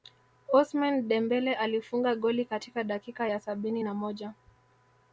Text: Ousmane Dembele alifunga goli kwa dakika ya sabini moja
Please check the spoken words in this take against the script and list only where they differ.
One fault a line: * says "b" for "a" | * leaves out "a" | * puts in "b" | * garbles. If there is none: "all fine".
* says "katika" for "kwa"
* puts in "na"